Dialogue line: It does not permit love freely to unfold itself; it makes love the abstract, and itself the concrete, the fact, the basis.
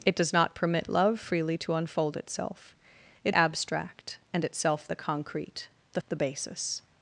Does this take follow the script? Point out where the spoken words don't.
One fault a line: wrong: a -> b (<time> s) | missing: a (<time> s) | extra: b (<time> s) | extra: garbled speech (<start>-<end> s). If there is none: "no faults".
missing: makes love the (3.4 s)
missing: fact (6.0 s)